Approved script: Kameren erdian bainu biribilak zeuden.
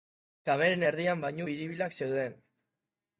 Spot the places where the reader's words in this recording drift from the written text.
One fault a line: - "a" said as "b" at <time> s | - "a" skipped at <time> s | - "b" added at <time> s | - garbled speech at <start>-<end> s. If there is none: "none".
none